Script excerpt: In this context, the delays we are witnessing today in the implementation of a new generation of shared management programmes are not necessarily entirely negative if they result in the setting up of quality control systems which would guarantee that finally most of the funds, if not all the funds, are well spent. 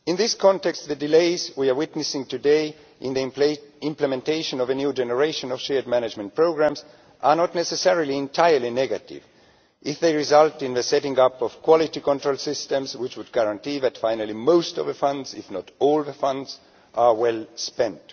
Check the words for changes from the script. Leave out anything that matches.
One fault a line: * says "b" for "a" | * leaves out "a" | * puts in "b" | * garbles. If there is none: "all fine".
all fine